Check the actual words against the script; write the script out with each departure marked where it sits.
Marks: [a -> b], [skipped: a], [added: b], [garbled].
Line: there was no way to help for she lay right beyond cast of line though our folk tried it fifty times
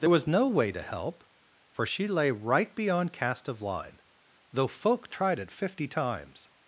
there was no way to help for she lay right beyond cast of line though [skipped: our] folk tried it fifty times